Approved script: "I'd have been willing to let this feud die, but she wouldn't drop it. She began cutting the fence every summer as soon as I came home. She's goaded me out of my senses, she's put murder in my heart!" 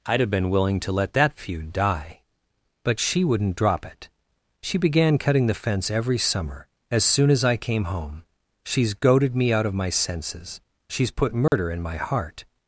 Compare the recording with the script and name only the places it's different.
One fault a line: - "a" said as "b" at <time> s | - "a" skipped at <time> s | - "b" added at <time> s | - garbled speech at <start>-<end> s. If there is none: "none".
- "this" said as "that" at 1.1 s